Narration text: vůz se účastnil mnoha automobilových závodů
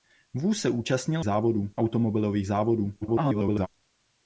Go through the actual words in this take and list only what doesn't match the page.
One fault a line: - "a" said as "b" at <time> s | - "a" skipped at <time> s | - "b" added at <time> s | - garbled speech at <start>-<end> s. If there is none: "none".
- "mnoha" said as "závodů" at 1.2 s
- garbled speech at 3.0-3.7 s